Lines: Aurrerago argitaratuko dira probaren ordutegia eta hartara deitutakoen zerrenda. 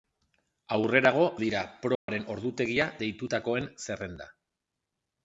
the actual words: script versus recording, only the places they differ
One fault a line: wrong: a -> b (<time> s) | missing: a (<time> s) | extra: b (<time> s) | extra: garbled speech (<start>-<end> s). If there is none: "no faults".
missing: argitaratuko (1.2 s)
missing: eta hartara (2.9 s)